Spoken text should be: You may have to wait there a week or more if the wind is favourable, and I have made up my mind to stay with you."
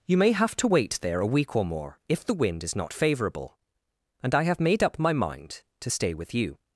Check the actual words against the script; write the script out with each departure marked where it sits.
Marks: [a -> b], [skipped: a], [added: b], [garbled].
You may have to wait there a week or more if the wind is [added: not] favourable, and I have made up my mind to stay with you."